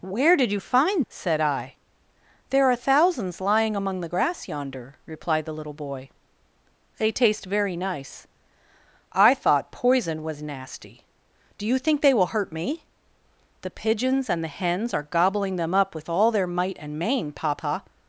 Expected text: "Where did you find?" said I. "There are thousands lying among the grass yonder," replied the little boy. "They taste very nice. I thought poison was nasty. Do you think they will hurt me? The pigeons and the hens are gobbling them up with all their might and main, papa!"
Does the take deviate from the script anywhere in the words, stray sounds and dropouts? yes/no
no